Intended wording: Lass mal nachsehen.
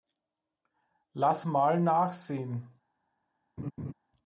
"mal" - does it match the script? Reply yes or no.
yes